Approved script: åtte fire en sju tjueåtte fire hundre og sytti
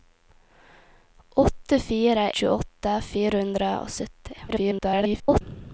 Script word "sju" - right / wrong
wrong